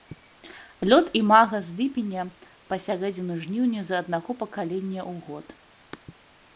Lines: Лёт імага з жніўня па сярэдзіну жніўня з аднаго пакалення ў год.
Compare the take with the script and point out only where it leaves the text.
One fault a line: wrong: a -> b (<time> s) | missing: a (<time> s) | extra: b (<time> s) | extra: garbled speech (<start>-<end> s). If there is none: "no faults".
wrong: жніўня -> ліпеня (1.8 s)